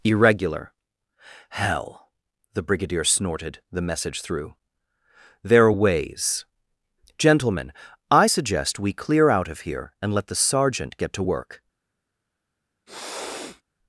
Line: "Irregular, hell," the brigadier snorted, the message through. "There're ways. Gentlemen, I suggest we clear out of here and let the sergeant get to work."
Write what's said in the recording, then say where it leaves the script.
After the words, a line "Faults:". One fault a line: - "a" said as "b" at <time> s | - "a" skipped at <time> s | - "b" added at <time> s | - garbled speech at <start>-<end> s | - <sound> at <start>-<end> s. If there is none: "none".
"Irregular, hell," the brigadier snorted, the message through. "There're ways. Gentlemen, I suggest we clear out of here and let the sergeant get to work."
Faults:
- sniff at 12.9-13.6 s